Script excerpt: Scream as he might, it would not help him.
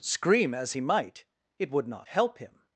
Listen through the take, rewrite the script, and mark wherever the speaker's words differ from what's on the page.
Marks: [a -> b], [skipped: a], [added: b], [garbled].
Scream as he might, it would not help him.